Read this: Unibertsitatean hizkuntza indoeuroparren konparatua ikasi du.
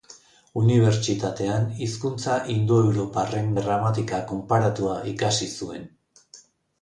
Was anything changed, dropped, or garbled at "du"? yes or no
yes